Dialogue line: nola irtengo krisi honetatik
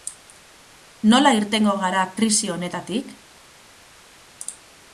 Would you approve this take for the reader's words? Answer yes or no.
no